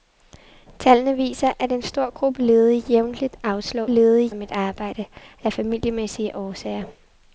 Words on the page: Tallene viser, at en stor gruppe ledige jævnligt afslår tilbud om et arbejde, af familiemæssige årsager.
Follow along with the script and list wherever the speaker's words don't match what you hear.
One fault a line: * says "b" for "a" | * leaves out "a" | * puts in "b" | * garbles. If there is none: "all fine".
* says "ledige" for "tilbud"